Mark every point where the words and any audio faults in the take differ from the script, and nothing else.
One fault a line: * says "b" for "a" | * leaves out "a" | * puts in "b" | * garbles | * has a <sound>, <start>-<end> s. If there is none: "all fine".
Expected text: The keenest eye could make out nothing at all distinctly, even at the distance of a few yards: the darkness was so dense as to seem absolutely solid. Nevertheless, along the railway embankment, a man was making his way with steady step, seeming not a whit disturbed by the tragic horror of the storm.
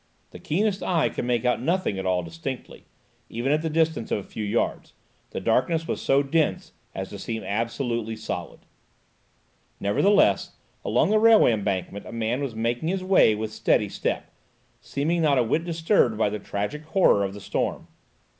all fine